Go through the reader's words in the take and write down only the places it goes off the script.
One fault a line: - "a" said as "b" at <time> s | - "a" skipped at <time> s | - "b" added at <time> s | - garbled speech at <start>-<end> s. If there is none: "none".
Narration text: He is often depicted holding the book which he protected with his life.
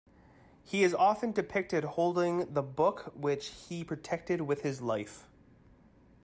none